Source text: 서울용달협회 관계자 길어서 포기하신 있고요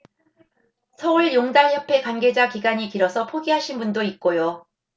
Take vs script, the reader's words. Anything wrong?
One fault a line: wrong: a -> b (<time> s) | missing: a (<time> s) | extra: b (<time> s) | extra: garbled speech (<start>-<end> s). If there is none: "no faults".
extra: 기간이 (2.5 s)
extra: 분도 (3.8 s)